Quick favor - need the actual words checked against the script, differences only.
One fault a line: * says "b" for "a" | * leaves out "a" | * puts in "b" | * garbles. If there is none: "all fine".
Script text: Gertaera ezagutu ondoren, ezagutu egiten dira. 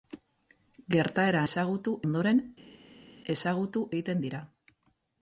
all fine